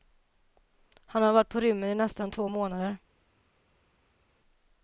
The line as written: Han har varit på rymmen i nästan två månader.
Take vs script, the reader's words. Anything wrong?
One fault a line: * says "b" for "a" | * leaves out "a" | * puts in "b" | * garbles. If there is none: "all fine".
all fine